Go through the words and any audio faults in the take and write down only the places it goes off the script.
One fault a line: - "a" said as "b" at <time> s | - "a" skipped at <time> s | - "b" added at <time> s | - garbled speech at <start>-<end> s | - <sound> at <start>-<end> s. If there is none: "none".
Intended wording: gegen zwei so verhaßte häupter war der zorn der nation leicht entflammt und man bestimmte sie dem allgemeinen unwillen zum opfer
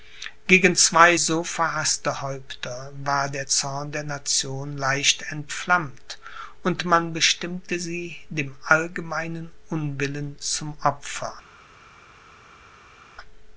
none